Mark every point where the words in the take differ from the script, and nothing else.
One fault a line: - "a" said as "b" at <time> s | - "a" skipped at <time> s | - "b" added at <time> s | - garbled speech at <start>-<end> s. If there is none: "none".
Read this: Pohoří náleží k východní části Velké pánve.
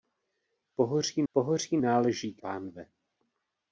- "pohoří" added at 1.3 s
- "východní části Velké" skipped at 2.4 s